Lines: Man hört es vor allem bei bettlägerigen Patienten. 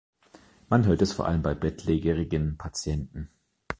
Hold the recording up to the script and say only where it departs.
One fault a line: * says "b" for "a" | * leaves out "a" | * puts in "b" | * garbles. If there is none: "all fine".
all fine